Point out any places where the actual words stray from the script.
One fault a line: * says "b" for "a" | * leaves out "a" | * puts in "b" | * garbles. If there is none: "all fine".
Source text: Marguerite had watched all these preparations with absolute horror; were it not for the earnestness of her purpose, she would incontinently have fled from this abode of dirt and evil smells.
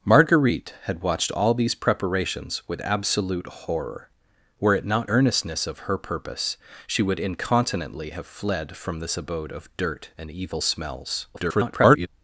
* leaves out "for the"
* garbles